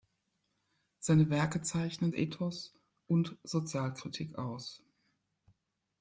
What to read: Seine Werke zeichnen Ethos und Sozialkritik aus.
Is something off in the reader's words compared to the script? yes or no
no